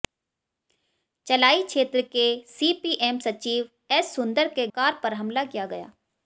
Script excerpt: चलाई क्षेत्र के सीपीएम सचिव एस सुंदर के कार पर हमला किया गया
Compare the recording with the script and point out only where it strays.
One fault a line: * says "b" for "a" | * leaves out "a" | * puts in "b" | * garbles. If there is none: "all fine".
all fine